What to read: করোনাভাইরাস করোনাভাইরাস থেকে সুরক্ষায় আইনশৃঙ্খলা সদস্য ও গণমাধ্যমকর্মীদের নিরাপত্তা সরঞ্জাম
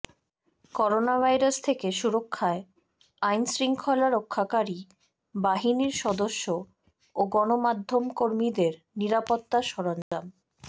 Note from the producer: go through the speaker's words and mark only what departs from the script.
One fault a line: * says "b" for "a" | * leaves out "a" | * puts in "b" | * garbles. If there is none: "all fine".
* leaves out "করোনাভাইরাস"
* puts in "রক্ষাকারী বাহিনীর"